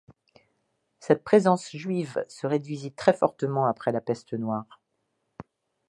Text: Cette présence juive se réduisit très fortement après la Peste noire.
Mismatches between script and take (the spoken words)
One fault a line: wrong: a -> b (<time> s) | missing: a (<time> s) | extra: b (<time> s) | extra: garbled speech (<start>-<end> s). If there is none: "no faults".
no faults